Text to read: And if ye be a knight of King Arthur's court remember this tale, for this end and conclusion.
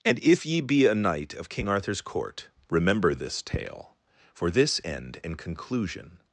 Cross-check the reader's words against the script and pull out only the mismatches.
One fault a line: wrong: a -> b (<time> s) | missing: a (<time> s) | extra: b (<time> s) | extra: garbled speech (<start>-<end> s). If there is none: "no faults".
no faults